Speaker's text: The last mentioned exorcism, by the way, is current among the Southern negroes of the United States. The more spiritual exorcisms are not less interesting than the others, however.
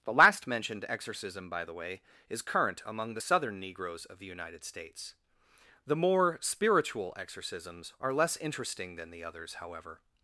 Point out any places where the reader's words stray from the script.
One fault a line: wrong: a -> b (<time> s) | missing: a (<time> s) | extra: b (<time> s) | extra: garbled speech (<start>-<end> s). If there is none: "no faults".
missing: not (8.1 s)